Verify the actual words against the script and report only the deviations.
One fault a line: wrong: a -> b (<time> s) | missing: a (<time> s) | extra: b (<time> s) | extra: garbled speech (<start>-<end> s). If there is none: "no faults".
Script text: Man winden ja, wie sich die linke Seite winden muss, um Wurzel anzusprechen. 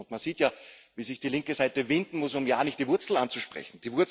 wrong: winden -> sieht (0.2 s)
extra: ja nicht die (2.5 s)